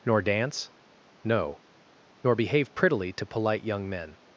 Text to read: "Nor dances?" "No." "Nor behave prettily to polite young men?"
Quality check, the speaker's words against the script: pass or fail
fail